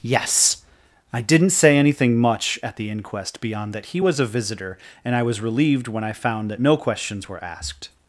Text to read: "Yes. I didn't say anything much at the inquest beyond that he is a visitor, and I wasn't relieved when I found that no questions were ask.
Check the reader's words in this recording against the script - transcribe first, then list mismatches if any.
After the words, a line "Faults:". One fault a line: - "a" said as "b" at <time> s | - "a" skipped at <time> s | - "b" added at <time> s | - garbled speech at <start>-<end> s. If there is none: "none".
"Yes. I didn't say anything much at the inquest beyond that he was a visitor, and I was relieved when I found that no questions were asked.
Faults:
- "is" said as "was" at 4.0 s
- "wasn't" said as "was" at 5.2 s
- "ask" said as "asked" at 7.4 s